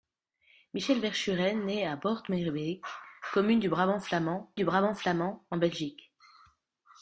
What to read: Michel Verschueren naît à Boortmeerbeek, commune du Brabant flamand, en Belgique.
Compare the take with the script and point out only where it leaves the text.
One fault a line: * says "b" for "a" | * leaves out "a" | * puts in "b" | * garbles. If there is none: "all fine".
* puts in "du Brabant flamand"